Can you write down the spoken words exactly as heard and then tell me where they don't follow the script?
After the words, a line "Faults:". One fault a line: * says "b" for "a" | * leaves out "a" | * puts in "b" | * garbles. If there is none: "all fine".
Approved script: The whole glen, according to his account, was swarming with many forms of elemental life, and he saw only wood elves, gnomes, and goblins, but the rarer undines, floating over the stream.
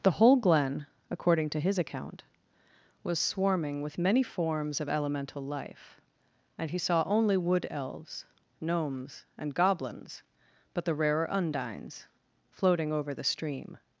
The whole glen, according to his account, was swarming with many forms of elemental life, and he saw only wood elves, gnomes, and goblins, but the rarer undines, floating over the stream.
Faults:
all fine